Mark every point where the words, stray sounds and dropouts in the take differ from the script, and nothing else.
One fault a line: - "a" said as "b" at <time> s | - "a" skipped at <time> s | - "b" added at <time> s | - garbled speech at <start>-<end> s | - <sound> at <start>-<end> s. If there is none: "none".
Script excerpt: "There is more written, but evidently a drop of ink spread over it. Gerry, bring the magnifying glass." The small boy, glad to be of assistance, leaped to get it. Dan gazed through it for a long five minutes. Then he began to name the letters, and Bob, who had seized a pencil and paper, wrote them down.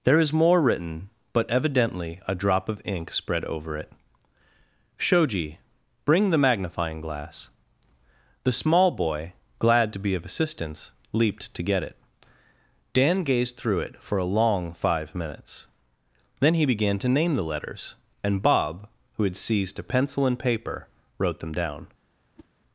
- "Gerry" said as "Shoji" at 5.0 s
- whoosh at 22.4-22.5 s